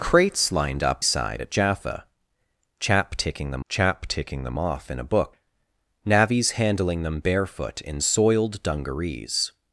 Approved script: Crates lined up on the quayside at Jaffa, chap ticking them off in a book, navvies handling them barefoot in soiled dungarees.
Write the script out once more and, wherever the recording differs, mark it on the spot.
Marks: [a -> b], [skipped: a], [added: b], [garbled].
Crates lined up [skipped: on the] quayside at Jaffa, chap ticking them [added: chap ticking them] off in a book, navvies handling them barefoot in soiled dungarees.